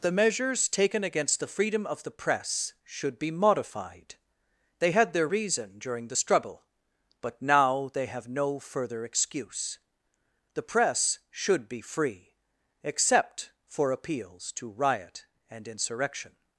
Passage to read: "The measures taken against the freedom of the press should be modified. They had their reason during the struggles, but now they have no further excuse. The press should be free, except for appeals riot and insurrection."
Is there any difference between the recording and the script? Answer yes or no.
yes